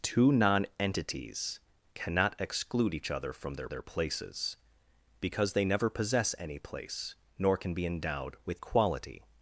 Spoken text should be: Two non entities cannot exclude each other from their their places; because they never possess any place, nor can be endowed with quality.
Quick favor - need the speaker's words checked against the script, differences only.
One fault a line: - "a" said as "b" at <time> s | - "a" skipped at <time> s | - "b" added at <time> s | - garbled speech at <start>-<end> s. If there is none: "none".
none